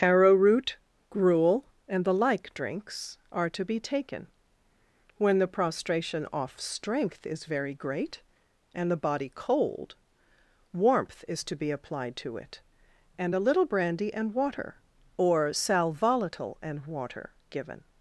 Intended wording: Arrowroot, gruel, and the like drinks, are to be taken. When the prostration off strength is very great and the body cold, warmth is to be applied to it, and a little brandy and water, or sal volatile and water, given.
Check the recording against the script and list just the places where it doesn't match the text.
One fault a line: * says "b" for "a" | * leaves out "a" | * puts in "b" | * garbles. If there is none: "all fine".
all fine